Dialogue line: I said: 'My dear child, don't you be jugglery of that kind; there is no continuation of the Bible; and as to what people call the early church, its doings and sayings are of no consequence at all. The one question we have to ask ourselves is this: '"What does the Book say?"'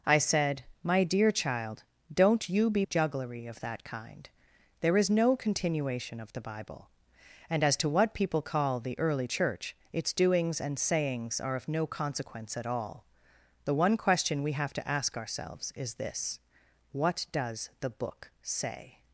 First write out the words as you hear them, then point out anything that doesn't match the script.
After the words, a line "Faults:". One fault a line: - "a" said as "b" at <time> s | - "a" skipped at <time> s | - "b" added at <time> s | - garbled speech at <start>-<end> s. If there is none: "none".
I said: 'My dear child, don't you be jugglery of that kind; there is no continuation of the Bible; and as to what people call the early church, its doings and sayings are of no consequence at all. The one question we have to ask ourselves is this: '"What does the Book say?"'
Faults:
none